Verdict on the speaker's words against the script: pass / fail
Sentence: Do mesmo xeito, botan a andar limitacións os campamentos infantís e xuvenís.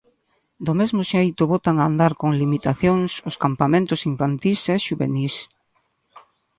fail